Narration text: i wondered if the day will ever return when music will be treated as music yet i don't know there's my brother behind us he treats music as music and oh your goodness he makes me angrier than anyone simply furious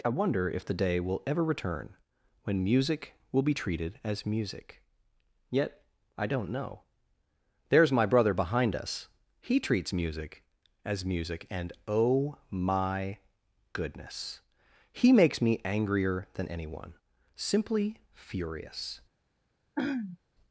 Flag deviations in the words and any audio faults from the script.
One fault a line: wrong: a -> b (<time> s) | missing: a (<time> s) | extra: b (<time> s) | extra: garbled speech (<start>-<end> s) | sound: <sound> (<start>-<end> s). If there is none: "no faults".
wrong: wondered -> wonder (0.1 s)
wrong: your -> my (12.5 s)
sound: throat clearing (19.8-20.2 s)